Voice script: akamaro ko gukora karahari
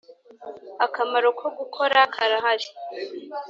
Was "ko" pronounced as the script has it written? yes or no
yes